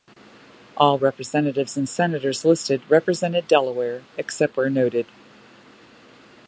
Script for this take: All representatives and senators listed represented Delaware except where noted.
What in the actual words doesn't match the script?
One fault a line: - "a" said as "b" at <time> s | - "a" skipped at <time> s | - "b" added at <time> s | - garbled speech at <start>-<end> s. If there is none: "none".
none